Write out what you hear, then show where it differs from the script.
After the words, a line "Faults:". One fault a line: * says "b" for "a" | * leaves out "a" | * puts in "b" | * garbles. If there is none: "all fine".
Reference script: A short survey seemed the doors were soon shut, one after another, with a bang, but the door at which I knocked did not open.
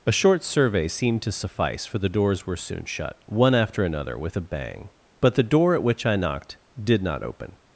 A short survey seemed to suffice, for the doors were soon shut, one after another, with a bang, but the door at which I knocked did not open.
Faults:
* puts in "to suffice for"